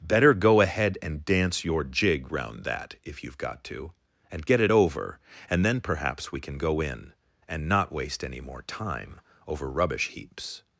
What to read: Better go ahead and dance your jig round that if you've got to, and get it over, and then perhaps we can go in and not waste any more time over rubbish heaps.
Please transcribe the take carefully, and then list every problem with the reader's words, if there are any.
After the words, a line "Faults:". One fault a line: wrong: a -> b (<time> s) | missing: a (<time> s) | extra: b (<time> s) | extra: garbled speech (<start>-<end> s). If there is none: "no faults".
Better go ahead and dance your jig round that if you've got to, and get it over, and then perhaps we can go in and not waste any more time over rubbish heaps.
Faults:
no faults